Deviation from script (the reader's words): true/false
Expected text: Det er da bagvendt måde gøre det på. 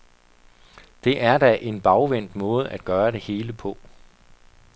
true